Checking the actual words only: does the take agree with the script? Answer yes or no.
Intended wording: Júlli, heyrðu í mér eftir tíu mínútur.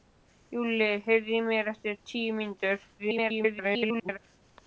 no